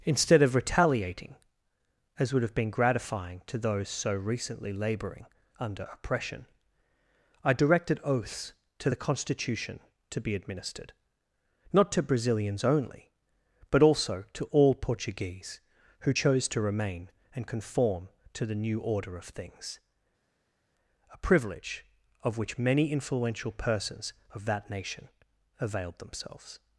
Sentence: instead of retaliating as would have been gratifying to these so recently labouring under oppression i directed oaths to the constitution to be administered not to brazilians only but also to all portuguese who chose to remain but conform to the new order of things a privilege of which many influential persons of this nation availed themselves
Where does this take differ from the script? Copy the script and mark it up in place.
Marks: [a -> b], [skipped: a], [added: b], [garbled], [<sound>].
instead of retaliating as would have been gratifying to [these -> those] so recently labouring under oppression i directed oaths to the constitution to be administered not to brazilians only but also to all portuguese who chose to remain [but -> and] conform to the new order of things a privilege of which many influential persons of [this -> that] nation availed themselves